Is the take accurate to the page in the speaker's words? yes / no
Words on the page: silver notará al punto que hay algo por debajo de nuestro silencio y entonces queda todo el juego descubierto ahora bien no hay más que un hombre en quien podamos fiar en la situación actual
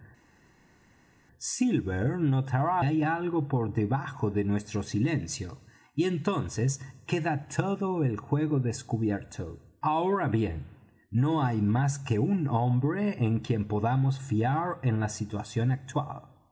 no